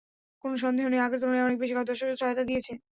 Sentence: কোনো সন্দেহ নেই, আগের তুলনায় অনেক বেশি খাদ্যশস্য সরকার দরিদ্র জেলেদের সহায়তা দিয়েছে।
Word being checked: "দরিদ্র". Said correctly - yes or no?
no